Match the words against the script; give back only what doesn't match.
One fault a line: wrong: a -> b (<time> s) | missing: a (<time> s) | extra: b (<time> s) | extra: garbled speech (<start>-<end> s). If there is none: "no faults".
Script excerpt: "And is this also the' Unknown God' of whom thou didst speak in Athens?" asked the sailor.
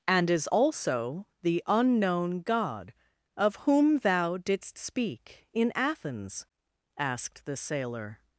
missing: this (0.5 s)